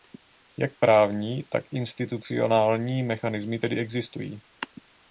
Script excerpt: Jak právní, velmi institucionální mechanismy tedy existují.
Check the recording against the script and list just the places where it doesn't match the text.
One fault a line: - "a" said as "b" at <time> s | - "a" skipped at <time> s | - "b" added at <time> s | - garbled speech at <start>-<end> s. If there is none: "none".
- "velmi" said as "tak" at 1.4 s